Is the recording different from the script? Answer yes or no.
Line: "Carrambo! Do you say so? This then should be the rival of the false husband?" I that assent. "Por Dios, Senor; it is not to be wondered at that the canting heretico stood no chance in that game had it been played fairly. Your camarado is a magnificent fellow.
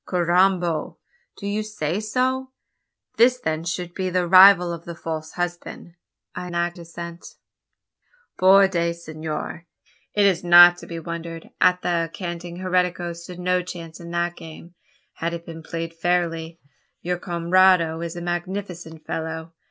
no